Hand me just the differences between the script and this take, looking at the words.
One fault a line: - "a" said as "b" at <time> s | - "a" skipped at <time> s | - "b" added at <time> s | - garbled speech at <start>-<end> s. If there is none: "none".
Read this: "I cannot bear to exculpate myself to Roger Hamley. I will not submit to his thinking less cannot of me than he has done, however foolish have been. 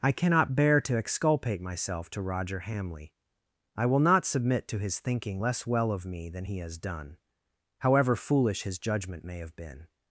- "cannot" said as "well" at 5.7 s
- "his judgment may" added at 8.6 s